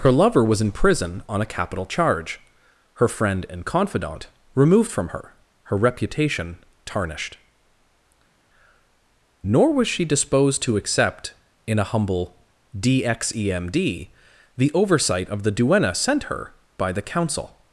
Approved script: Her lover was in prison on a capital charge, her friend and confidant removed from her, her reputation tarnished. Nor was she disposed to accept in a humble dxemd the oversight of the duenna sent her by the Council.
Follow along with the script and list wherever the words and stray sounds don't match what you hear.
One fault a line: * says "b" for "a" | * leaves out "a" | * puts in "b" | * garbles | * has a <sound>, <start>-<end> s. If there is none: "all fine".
all fine